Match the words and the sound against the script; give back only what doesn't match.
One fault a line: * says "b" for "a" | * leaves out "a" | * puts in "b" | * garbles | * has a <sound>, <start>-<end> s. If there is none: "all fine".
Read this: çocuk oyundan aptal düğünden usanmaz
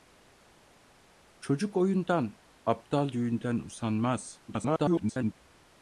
* garbles